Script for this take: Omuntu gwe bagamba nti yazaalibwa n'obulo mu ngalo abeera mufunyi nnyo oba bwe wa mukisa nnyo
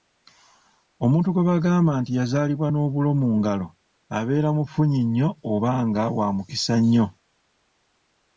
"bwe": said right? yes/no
no